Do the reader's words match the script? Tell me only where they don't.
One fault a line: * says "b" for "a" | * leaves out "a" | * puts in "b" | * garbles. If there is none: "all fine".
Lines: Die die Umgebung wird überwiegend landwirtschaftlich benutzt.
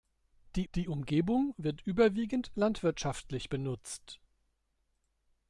all fine